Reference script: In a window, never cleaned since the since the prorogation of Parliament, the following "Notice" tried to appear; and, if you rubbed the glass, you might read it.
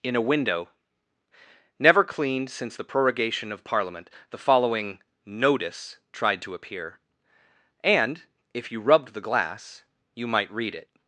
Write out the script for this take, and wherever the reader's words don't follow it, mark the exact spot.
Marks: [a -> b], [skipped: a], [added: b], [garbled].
In a window, never cleaned since the [skipped: since the] prorogation of Parliament, the following "Notice" tried to appear; and, if you rubbed the glass, you might read it.